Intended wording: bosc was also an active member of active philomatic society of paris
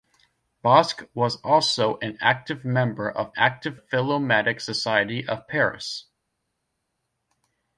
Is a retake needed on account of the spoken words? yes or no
no